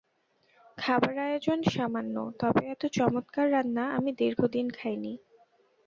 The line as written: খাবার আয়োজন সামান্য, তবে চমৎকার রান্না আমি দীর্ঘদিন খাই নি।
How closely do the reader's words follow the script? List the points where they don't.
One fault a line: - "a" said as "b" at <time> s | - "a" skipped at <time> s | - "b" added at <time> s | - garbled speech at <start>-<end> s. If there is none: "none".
- "এত" added at 2.6 s